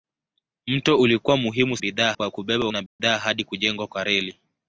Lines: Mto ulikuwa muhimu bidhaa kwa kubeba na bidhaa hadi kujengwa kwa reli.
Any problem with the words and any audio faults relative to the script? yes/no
yes